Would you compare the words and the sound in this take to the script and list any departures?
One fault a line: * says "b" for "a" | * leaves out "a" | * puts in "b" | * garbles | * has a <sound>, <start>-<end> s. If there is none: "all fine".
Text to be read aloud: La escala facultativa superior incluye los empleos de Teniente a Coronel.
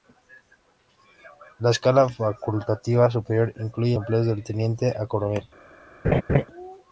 * leaves out "los"
* has a laugh, 6.0-6.5 s